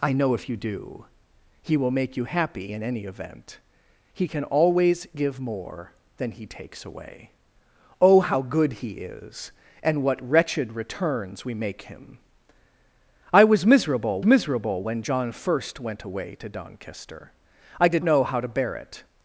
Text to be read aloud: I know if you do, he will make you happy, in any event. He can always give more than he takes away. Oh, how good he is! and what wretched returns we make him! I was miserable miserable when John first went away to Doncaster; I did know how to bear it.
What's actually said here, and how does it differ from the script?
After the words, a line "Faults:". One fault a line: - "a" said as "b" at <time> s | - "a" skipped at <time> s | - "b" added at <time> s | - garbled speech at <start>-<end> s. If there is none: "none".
I know if you do, he will make you happy, in any event. He can always give more than he takes away. Oh, how good he is! and what wretched returns we make him! I was miserable miserable when John first went away to Doncaster; I did know how to bear it.
Faults:
none